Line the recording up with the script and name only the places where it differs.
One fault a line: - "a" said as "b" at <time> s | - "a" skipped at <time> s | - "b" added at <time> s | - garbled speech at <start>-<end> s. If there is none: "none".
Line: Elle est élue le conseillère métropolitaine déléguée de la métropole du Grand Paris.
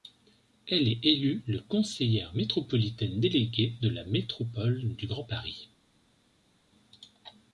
none